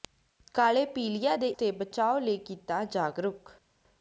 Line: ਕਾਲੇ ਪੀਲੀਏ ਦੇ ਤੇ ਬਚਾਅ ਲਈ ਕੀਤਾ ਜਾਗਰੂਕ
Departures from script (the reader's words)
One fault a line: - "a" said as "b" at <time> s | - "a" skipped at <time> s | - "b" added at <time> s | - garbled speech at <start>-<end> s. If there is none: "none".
none